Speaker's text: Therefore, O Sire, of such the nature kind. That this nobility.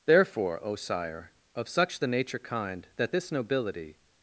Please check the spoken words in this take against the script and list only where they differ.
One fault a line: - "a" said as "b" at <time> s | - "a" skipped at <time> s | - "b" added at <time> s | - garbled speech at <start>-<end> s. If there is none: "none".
none